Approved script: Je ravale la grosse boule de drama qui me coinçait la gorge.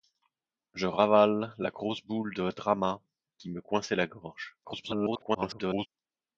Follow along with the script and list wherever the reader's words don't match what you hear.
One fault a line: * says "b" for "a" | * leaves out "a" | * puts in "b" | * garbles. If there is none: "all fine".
* garbles